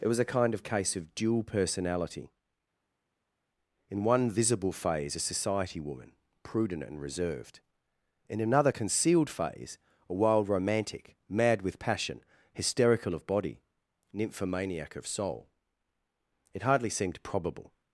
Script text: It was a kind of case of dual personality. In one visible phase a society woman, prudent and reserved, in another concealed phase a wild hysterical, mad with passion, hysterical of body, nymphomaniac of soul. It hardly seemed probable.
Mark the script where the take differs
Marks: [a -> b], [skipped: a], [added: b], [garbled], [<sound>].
It was a kind of case of dual personality. In one visible phase a society woman, prudent and reserved, in another concealed phase a wild [hysterical, -> romantic] mad with passion, hysterical of body, nymphomaniac of soul. It hardly seemed probable.